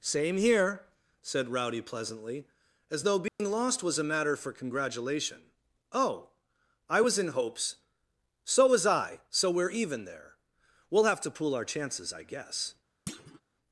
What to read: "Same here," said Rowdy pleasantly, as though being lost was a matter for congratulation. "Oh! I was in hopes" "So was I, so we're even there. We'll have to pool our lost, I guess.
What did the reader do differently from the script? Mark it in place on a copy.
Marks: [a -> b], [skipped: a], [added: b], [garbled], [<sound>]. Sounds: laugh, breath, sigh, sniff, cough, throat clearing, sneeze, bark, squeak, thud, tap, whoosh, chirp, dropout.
"Same here," said Rowdy pleasantly, as though being [dropout] lost was a matter for congratulation. "Oh! I was in hopes" "So was I, so we're even there. We'll have to pool our [lost, -> chances] I guess. [thud]